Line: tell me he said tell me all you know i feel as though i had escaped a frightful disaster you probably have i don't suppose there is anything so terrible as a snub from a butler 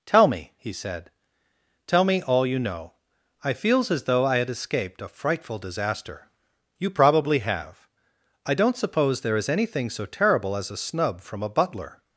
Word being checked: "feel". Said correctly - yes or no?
no